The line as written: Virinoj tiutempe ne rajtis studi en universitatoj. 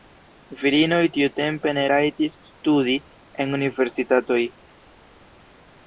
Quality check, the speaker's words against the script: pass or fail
pass